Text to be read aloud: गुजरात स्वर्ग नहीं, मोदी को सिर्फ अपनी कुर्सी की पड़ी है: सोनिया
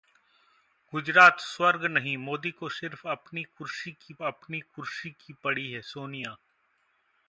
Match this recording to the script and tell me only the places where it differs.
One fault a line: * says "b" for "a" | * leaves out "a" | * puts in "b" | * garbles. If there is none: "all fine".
* puts in "अपनी कुर्सी की"